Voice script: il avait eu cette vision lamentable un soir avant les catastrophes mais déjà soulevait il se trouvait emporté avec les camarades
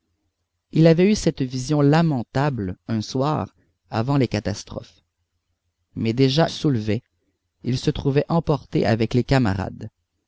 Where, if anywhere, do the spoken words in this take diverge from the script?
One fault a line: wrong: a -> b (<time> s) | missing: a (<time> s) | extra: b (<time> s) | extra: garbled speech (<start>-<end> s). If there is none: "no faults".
no faults